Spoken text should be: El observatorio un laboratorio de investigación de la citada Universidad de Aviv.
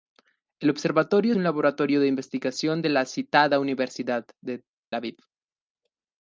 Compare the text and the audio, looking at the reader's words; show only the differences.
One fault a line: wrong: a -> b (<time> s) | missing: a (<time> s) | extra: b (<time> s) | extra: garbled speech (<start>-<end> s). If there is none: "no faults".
no faults